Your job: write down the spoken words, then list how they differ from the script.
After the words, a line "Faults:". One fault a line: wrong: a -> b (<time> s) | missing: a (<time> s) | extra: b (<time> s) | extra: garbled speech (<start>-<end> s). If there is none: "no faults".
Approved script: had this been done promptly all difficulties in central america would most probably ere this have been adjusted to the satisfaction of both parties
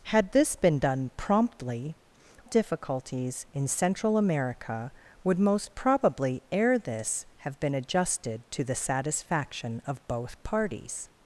had this been done promptly difficulties in central america would most probably ere this have been adjusted to the satisfaction of both parties
Faults:
missing: all (1.9 s)